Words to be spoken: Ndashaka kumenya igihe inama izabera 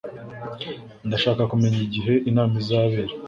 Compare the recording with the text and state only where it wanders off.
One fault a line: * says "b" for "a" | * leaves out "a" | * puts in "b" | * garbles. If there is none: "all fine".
all fine